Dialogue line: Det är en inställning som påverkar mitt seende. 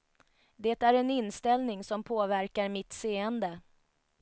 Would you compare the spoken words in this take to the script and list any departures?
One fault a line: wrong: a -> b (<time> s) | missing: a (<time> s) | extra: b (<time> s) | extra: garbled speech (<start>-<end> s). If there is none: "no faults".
no faults